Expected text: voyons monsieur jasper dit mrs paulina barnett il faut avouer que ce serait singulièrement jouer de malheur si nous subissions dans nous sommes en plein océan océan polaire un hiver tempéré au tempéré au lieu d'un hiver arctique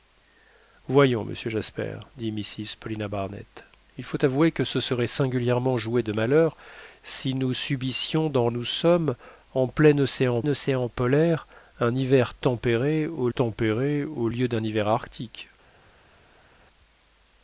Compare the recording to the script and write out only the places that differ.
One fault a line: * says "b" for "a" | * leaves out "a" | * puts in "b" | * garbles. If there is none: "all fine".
all fine